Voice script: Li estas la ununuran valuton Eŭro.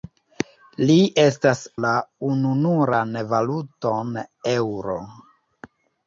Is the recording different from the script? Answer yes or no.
no